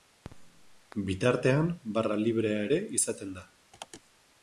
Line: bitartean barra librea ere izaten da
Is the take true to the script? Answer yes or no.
yes